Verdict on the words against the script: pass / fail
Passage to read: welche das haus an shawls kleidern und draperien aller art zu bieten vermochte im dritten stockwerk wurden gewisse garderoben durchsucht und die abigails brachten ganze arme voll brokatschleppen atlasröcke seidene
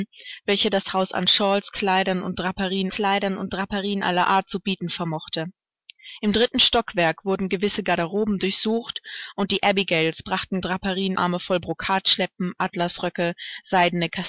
fail